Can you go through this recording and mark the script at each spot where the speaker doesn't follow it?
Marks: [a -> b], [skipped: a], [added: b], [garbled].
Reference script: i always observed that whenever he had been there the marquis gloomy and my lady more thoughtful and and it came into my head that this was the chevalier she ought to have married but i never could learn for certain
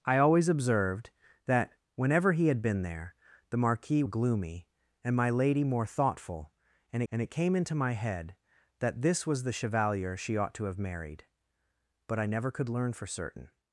i always observed that whenever he had been there the marquis gloomy and my lady more thoughtful and and it came into my head that this was the chevalier she ought to have married but i never could learn for certain